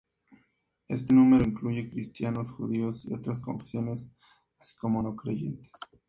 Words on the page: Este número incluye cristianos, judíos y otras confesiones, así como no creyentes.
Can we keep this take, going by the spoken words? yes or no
yes